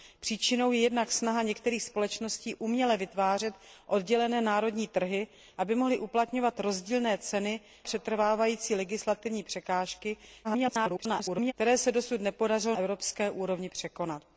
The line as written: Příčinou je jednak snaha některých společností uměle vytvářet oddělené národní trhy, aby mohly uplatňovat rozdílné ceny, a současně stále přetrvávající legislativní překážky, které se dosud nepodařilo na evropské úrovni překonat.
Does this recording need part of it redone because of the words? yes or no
yes